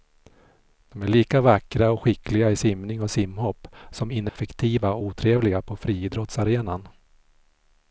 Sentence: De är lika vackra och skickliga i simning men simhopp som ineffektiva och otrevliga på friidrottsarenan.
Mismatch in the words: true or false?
true